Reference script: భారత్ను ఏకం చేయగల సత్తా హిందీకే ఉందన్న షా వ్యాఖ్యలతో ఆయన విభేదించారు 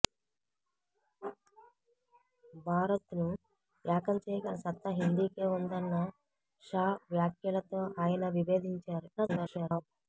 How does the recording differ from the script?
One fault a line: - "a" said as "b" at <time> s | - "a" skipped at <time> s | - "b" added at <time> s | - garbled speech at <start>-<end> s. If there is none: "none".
- garbled speech at 9.2-9.8 s